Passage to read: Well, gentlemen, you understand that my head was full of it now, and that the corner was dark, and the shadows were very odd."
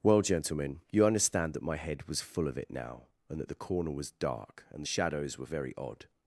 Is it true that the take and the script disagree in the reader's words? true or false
false